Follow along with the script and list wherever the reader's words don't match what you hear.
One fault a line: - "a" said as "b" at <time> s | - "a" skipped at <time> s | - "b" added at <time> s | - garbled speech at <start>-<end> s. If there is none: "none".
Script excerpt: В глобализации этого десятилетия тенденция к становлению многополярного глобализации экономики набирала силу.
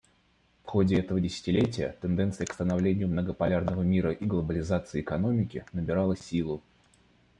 - "глобализации" said as "ходе" at 0.7 s
- "мира и" added at 3.8 s